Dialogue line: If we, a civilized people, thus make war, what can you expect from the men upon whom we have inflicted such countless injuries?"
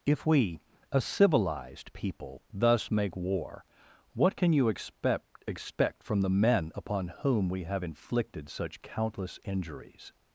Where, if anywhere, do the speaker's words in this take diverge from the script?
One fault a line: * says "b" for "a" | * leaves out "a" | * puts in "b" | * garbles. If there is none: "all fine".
* puts in "expect"